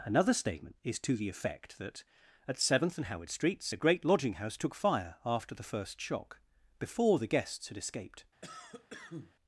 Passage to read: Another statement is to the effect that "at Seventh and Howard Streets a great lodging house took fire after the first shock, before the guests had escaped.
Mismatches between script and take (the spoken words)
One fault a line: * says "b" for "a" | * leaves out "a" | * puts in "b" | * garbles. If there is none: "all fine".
all fine